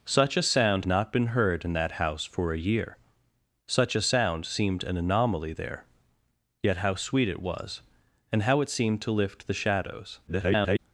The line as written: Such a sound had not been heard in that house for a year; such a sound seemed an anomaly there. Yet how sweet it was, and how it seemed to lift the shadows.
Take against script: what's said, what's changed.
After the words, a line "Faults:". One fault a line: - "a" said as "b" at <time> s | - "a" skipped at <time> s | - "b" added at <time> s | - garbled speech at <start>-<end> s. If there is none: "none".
Such a sound not been heard in that house for a year; such a sound seemed an anomaly there. Yet how sweet it was, and how it seemed to lift the shadows. [garbled]
Faults:
- "had" skipped at 0.9 s
- garbled speech at 10.3-10.8 s